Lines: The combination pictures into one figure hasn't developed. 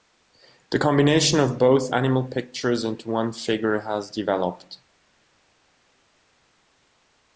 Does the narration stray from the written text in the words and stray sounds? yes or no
yes